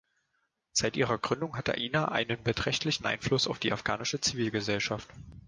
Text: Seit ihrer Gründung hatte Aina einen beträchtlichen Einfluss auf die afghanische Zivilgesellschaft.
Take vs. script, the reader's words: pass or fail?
fail